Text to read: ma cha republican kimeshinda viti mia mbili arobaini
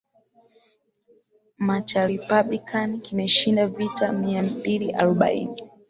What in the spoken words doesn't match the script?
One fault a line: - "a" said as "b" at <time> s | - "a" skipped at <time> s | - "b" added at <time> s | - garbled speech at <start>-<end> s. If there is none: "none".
none